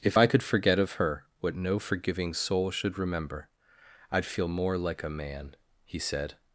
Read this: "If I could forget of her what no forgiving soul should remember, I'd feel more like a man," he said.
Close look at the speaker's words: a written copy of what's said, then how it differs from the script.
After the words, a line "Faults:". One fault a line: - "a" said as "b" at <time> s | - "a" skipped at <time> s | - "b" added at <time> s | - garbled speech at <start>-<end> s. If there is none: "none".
"If I could forget of her what no forgiving soul should remember, I'd feel more like a man," he said.
Faults:
none